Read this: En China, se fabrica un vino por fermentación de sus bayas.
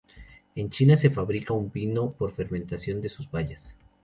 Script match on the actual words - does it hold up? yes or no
yes